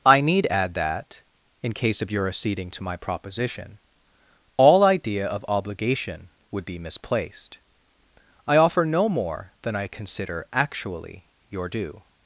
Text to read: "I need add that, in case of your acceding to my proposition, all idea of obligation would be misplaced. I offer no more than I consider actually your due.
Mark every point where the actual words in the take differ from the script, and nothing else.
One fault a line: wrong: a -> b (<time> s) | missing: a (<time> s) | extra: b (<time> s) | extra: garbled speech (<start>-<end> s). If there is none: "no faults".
no faults